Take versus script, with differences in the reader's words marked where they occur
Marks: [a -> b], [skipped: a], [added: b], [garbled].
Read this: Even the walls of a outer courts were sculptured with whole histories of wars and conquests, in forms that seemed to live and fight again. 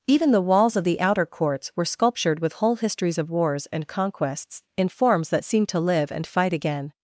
Even the walls of [a -> the] outer courts were sculptured with whole histories of wars and conquests, in forms that seemed to live and fight again.